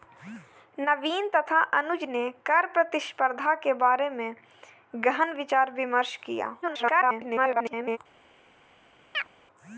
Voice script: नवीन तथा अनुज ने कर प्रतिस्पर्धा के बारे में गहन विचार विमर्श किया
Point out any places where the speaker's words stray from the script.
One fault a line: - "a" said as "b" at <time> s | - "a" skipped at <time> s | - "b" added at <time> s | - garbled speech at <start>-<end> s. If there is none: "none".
- garbled speech at 6.6-8.0 s